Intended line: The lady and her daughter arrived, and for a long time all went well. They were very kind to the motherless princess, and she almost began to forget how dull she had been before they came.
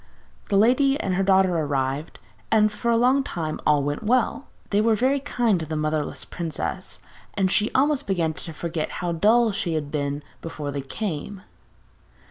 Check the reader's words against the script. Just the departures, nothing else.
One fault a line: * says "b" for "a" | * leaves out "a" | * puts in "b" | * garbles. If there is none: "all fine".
all fine